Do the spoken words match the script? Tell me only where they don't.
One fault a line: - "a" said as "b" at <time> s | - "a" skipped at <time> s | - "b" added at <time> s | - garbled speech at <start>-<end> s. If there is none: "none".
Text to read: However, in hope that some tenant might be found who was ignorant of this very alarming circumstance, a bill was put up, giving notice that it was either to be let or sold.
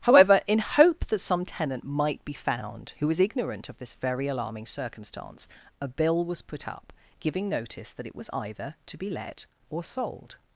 none